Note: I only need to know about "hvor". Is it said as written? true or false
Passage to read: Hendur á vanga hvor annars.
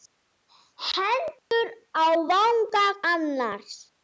false